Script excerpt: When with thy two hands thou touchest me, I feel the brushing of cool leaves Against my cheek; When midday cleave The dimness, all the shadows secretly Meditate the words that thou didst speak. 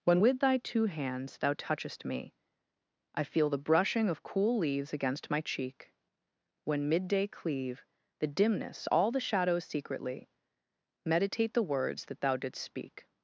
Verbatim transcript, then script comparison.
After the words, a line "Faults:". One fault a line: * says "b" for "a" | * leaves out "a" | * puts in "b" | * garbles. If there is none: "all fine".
When with thy two hands thou touchest me, I feel the brushing of cool leaves Against my cheek; When midday cleave The dimness, all the shadows secretly Meditate the words that thou didst speak.
Faults:
all fine